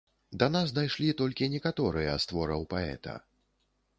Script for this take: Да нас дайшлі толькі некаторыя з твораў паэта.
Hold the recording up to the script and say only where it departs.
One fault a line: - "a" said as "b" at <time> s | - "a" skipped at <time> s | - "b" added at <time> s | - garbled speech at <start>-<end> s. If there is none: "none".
none